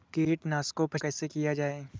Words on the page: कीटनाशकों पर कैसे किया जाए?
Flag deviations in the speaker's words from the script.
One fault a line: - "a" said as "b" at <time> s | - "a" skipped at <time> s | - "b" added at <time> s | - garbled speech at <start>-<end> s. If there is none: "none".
none